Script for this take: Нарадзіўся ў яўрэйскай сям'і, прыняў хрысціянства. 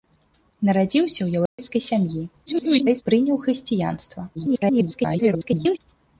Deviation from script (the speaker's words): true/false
true